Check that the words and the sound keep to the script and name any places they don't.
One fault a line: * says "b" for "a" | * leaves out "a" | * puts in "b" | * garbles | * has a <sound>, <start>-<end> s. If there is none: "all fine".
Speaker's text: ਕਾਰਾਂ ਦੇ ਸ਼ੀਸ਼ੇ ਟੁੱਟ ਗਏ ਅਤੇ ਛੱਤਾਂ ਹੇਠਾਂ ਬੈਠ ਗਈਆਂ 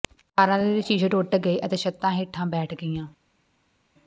all fine